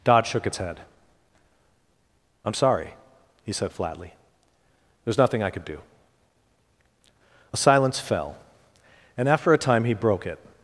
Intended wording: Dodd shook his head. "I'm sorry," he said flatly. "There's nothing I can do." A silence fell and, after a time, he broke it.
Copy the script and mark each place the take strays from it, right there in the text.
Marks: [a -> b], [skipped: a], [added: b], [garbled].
Dodd shook [his -> its] head. "I'm sorry," he said flatly. "There's nothing I [can -> could] do." A silence fell and, after a time, he broke it.